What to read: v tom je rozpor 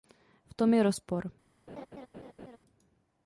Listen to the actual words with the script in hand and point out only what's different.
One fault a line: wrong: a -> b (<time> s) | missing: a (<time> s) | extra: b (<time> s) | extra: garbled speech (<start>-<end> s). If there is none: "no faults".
no faults